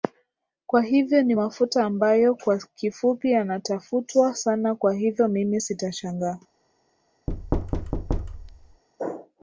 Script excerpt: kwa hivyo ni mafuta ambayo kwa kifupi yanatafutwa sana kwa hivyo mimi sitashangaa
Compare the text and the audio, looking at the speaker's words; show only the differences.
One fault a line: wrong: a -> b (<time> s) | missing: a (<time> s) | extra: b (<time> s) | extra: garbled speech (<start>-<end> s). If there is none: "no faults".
no faults